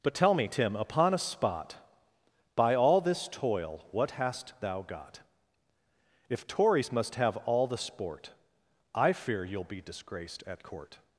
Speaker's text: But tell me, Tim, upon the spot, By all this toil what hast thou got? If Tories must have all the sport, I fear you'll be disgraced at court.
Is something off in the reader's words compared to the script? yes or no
yes